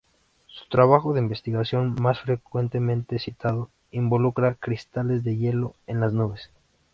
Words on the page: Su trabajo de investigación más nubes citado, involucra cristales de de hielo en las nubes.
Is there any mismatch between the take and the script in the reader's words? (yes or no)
yes